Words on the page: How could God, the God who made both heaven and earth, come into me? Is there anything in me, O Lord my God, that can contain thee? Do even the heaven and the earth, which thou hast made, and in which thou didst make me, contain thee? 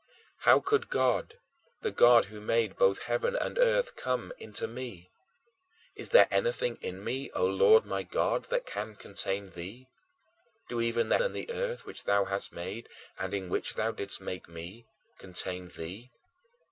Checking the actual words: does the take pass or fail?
fail